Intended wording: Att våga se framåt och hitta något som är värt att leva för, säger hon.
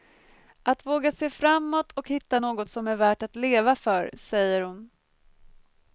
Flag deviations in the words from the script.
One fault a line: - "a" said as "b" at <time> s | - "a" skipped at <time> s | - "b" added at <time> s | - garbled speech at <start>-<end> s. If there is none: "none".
none